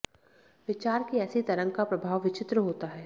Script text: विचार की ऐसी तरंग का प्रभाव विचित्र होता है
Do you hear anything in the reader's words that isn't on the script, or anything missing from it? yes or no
no